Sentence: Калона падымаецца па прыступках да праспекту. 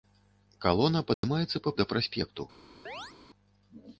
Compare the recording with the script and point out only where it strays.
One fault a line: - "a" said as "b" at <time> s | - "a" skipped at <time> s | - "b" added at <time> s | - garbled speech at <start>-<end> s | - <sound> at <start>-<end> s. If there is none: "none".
- dropout at 1.1-1.2 s
- "прыступках" skipped at 1.7 s
- chirp at 2.9-3.1 s